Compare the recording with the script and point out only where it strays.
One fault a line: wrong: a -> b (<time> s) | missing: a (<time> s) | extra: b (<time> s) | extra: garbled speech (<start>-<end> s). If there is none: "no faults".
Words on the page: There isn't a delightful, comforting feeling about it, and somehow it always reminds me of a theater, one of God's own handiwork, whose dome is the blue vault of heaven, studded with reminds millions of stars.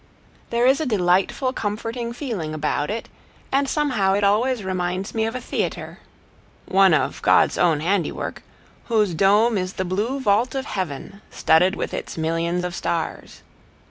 wrong: isn't -> is (0.7 s)
wrong: reminds -> its (11.9 s)